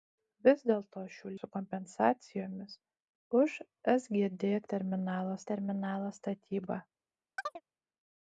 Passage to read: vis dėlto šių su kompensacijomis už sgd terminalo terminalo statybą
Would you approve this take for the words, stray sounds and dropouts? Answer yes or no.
no